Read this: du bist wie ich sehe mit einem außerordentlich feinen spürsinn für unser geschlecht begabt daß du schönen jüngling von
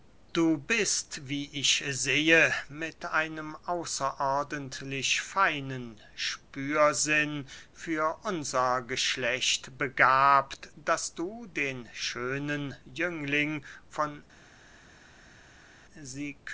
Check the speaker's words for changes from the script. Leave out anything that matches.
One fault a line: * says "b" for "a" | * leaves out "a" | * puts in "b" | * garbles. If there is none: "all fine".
* puts in "den"